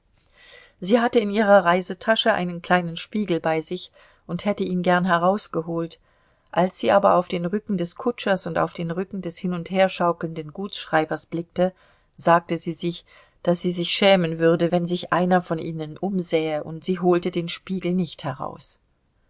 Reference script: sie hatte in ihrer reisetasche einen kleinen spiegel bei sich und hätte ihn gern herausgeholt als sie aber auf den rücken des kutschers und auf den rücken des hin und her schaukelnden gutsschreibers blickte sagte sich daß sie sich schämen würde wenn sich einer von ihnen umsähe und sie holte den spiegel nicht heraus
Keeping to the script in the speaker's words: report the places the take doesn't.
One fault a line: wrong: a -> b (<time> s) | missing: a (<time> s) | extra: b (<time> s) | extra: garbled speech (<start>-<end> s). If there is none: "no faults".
extra: sie (12.6 s)